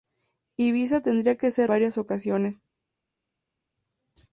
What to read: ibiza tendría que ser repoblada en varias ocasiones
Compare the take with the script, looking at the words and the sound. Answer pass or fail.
fail